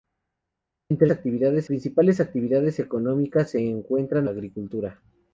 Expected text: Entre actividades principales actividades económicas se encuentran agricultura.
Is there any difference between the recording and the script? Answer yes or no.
no